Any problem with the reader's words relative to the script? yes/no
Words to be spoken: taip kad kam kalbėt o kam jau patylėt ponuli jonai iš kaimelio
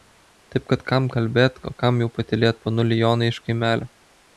no